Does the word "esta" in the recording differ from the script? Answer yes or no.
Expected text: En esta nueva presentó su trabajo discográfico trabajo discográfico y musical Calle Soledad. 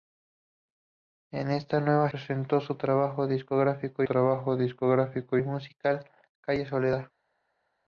no